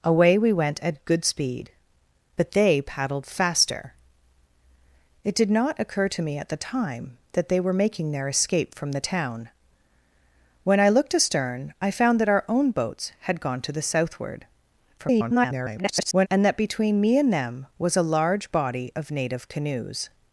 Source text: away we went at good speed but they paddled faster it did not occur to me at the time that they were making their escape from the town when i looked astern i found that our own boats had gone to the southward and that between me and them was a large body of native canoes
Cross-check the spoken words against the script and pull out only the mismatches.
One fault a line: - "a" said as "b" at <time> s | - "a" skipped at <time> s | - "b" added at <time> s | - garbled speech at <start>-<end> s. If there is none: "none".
- garbled speech at 15.0-16.3 s